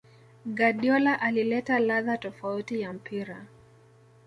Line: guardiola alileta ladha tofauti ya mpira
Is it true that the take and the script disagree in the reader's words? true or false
false